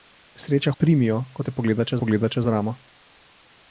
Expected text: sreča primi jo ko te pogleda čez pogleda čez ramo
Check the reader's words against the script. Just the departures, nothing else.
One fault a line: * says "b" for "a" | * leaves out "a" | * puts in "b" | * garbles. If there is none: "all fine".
all fine